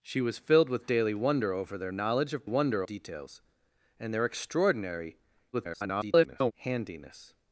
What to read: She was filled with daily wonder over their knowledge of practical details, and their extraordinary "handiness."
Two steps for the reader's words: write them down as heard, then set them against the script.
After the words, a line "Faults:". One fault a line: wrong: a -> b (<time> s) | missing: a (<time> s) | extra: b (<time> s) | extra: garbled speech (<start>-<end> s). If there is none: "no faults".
She was filled with daily wonder over their knowledge of wonder details, and their extraordinary [garbled] "handiness."
Faults:
wrong: practical -> wonder (2.4 s)
extra: garbled speech (5.5-6.5 s)